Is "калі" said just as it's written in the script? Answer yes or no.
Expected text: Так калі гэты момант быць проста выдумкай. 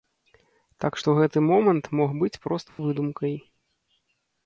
no